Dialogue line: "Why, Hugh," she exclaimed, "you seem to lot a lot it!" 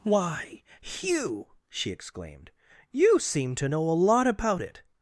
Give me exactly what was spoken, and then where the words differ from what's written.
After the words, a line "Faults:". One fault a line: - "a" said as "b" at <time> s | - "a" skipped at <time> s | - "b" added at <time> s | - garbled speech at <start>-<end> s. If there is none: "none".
"Why, Hugh," she exclaimed, "you seem to know a lot about it!"
Faults:
- "lot" said as "know" at 3.7 s
- "about" added at 4.3 s